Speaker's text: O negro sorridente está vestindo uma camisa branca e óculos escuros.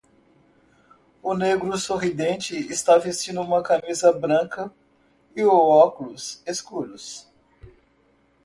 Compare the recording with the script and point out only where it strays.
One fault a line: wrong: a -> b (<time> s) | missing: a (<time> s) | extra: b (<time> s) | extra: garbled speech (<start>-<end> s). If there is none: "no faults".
no faults